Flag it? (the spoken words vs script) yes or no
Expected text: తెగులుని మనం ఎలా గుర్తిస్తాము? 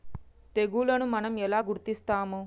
no